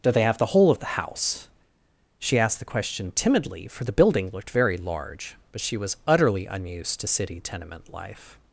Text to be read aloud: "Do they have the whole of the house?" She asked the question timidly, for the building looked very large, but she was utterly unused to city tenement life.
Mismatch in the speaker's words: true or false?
false